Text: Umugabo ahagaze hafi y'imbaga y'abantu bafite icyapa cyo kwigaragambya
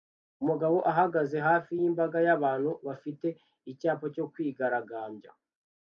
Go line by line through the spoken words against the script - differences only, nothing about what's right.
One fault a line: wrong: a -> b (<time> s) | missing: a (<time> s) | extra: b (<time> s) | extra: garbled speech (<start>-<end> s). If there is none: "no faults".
no faults